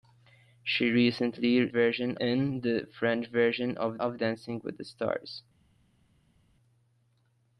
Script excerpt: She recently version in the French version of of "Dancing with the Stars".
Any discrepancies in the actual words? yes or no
no